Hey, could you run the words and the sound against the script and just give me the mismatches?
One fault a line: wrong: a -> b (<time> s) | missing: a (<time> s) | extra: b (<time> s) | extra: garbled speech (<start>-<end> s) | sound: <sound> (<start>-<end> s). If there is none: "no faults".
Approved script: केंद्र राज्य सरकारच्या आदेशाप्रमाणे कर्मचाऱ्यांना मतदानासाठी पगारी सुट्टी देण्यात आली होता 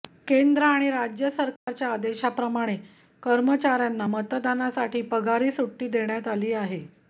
extra: आणि (0.7 s)
sound: dropout (1.6-1.7 s)
wrong: होता -> आहे (6.5 s)